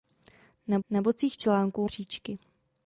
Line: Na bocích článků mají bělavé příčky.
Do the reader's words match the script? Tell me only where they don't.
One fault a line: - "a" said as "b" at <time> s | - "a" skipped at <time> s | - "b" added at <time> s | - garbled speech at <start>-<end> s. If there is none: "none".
- "na" added at 0.9 s
- "mají bělavé" skipped at 1.9 s